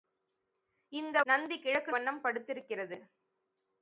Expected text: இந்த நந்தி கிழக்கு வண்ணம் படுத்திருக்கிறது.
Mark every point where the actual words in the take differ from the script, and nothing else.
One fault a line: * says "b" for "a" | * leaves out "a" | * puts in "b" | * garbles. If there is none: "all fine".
all fine